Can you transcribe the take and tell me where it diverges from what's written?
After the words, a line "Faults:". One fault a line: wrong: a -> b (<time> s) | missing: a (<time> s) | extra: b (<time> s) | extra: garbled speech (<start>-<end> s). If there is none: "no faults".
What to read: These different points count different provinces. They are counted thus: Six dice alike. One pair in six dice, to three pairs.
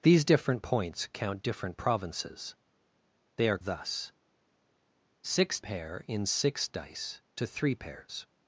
These different points count different provinces. They are thus: Six pair in six dice, to three pairs.
Faults:
missing: counted (3.6 s)
missing: dice alike One (5.6 s)